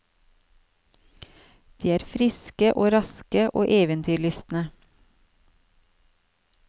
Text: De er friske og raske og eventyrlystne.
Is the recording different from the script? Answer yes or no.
no